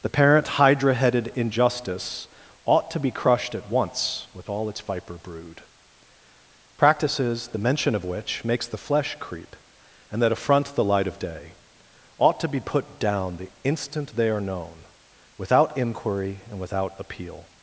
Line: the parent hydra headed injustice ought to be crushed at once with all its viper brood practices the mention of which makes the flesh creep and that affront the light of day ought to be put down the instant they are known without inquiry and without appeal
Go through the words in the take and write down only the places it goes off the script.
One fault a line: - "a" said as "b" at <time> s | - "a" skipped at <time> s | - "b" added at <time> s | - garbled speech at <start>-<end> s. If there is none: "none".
none